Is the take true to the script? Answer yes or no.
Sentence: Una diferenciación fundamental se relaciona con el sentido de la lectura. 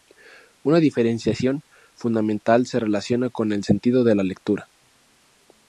yes